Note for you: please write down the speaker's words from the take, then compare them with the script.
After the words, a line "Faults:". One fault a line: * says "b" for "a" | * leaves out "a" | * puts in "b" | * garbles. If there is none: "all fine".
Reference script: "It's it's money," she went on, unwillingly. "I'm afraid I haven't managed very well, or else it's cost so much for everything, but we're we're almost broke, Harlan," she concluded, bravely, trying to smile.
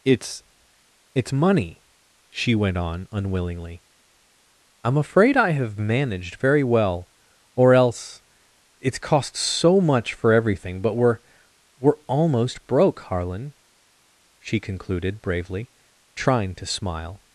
"It's it's money," she went on, unwillingly. "I'm afraid I have managed very well, or else it's cost so much for everything, but we're we're almost broke, Harlan," she concluded, bravely, trying to smile.
Faults:
* says "have" for "haven't"